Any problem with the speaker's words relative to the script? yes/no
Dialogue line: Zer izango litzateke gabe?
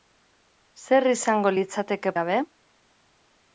no